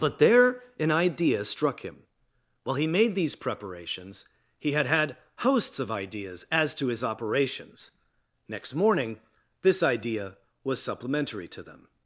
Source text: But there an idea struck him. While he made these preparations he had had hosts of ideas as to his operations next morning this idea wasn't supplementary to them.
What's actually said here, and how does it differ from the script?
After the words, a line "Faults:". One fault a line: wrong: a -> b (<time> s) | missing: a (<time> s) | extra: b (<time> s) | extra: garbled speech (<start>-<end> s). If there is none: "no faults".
But there an idea struck him. While he made these preparations he had had hosts of ideas as to his operations next morning this idea was supplementary to them.
Faults:
wrong: wasn't -> was (10.6 s)